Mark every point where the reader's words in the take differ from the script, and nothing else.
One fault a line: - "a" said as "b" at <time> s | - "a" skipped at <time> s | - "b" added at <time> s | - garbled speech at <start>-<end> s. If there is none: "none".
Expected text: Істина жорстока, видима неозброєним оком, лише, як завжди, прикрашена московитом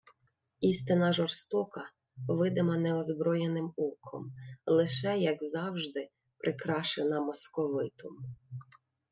none